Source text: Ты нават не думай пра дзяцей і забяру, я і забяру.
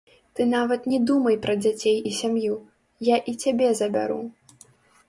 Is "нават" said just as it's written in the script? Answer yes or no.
yes